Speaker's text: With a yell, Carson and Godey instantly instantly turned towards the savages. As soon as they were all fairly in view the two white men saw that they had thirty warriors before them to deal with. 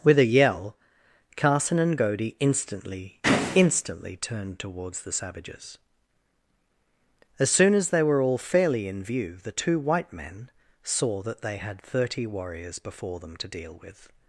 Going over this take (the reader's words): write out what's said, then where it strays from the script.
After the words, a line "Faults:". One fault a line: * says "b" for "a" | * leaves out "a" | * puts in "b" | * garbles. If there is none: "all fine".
With a yell, Carson and Godey instantly instantly turned towards the savages. As soon as they were all fairly in view the two white men saw that they had thirty warriors before them to deal with.
Faults:
all fine